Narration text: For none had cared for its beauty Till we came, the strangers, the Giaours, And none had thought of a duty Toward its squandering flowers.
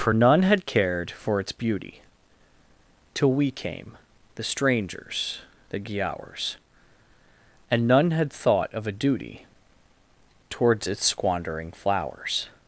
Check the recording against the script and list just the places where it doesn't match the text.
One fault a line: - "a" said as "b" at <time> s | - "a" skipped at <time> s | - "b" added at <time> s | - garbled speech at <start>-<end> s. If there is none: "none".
- "Toward" said as "Towards" at 10.5 s